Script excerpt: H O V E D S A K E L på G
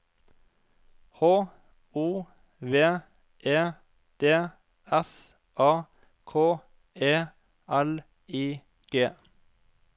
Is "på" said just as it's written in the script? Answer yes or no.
no